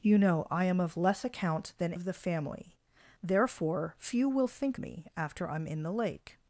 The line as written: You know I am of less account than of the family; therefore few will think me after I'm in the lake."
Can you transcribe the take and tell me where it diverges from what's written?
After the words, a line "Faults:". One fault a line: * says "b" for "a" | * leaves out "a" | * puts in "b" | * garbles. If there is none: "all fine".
You know I am of less account than of the family; therefore few will think me after I'm in the lake."
Faults:
all fine